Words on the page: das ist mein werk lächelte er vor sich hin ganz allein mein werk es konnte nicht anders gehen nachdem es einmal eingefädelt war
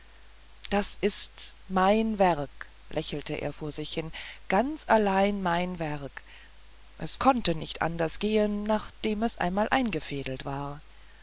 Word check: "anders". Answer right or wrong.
right